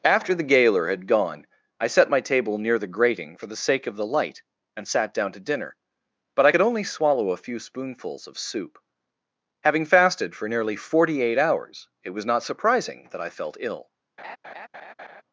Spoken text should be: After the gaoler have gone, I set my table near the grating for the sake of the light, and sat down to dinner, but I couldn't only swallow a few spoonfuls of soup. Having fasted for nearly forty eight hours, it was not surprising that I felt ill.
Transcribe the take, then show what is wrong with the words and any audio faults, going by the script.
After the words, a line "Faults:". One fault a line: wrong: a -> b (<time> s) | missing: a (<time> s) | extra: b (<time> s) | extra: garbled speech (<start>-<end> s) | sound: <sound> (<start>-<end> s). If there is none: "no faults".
After the gaoler had gone, I set my table near the grating for the sake of the light, and sat down to dinner, but I could only swallow a few spoonfuls of soup. Having fasted for nearly forty eight hours, it was not surprising that I felt ill.
Faults:
wrong: have -> had (0.9 s)
wrong: couldn't -> could (6.5 s)
sound: laugh (14.2-15.2 s)